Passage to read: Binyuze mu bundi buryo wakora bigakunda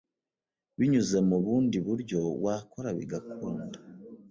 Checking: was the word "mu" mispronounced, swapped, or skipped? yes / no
no